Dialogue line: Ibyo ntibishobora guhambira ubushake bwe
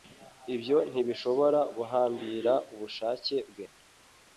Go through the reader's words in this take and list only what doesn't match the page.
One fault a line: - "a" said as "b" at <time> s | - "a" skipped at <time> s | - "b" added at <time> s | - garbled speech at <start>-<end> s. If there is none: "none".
none